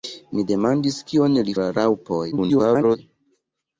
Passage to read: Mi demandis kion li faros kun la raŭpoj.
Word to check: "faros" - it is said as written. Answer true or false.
false